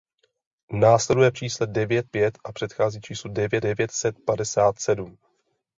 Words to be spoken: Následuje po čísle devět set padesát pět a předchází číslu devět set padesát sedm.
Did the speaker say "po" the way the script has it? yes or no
no